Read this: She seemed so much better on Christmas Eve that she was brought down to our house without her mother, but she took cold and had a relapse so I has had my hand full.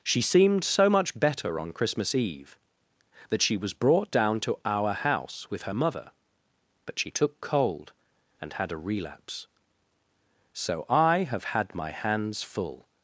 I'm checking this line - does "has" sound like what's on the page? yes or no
no